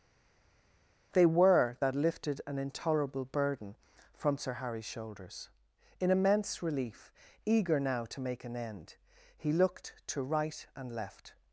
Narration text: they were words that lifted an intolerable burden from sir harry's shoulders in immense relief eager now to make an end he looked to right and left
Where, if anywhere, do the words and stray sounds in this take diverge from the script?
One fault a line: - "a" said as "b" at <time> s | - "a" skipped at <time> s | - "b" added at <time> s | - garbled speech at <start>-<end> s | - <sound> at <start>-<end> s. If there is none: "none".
- "words" skipped at 1.8 s